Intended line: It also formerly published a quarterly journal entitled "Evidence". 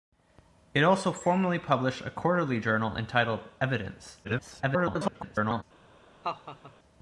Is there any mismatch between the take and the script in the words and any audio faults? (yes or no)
yes